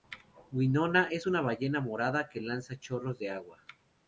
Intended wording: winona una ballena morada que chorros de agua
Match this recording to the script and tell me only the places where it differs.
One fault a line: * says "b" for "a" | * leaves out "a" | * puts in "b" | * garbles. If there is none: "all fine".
* puts in "es"
* puts in "lanza"